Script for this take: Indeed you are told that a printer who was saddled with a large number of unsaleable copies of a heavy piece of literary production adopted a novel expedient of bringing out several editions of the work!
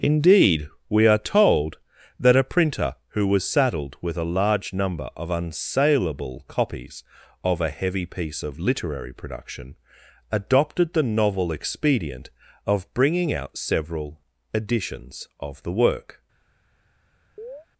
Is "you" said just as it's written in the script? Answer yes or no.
no